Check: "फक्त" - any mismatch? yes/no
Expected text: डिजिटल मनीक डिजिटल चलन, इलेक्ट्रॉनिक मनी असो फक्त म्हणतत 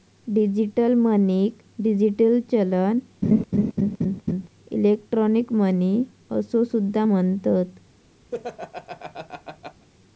yes